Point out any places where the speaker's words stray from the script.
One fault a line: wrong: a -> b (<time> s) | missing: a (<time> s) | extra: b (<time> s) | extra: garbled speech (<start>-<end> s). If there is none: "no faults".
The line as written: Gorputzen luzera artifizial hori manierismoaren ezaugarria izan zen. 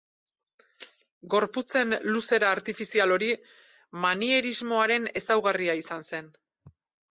no faults